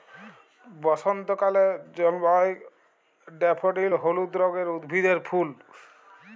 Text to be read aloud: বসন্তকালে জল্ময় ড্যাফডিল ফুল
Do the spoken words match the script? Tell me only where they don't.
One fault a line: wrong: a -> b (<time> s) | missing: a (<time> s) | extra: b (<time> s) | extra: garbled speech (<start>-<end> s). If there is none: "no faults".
extra: হলুদ রঙের উদ্ভিদের (3.9 s)